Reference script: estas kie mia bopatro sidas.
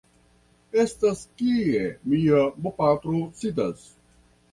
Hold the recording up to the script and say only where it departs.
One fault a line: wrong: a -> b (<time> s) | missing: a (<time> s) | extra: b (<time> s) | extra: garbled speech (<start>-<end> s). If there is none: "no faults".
no faults